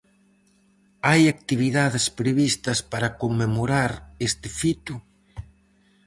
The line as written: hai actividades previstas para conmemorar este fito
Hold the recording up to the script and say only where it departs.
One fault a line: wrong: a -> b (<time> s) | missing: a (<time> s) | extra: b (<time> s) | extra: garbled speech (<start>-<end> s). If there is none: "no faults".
no faults